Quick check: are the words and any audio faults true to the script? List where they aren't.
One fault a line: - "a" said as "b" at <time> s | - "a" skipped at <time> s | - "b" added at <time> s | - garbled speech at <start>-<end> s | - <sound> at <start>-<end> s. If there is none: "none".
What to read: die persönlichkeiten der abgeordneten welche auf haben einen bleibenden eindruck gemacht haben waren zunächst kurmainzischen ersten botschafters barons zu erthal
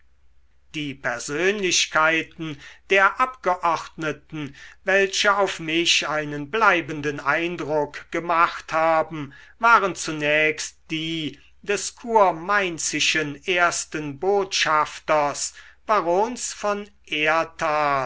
- "haben" said as "mich" at 5.6 s
- "die des" added at 10.9 s
- "zu" said as "von" at 16.5 s